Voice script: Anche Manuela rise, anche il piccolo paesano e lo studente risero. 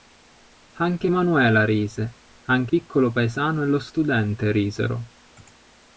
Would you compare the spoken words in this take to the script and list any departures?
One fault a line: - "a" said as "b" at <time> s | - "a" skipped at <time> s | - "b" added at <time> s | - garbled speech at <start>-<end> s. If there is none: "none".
- "il" skipped at 2.7 s